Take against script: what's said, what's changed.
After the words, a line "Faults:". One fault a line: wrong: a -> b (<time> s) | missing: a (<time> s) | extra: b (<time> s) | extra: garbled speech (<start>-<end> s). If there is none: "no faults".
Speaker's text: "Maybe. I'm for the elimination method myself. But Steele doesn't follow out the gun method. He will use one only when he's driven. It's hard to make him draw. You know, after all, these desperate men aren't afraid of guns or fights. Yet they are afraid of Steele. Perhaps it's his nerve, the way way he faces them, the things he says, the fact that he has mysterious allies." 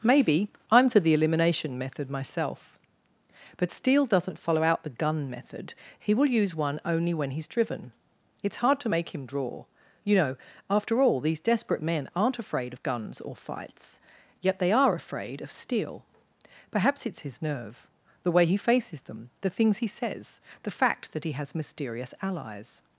"Maybe. I'm for the elimination method myself. But Steele doesn't follow out the gun method. He will use one only when he's driven. It's hard to make him draw. You know, after all, these desperate men aren't afraid of guns or fights. Yet they are afraid of Steele. Perhaps it's his nerve, the way he faces them, the things he says, the fact that he has mysterious allies."
Faults:
missing: way (18.4 s)